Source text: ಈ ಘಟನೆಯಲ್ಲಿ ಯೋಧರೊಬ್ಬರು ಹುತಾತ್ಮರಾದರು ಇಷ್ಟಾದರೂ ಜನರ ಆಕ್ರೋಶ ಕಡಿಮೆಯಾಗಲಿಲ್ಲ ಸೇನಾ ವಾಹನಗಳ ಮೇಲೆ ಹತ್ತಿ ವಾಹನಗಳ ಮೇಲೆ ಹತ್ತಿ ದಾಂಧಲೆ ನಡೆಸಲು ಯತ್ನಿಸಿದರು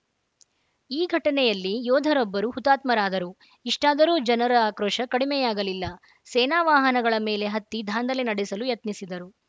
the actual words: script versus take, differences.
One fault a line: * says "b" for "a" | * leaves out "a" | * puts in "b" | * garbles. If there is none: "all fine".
* leaves out "ವಾಹನಗಳ ಮೇಲೆ ಹತ್ತಿ"